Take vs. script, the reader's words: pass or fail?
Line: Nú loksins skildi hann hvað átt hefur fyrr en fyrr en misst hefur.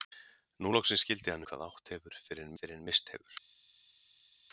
pass